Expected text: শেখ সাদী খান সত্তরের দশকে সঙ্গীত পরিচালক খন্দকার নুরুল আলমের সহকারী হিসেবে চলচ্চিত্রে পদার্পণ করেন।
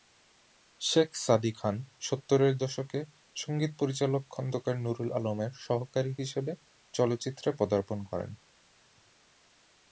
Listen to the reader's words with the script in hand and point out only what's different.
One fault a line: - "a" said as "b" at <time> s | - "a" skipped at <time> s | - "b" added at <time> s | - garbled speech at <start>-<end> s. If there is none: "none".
none